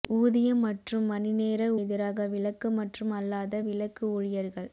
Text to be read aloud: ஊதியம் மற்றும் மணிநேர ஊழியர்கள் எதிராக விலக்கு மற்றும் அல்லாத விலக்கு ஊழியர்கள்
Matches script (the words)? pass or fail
fail